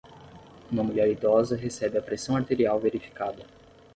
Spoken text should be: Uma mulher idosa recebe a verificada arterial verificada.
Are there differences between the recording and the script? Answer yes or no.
yes